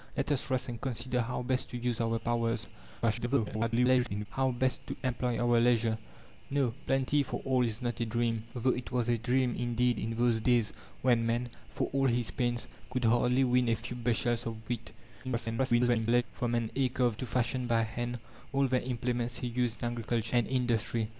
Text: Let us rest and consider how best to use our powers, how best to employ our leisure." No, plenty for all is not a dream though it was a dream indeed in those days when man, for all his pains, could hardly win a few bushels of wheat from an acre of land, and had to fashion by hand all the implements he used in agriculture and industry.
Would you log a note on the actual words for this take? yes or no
yes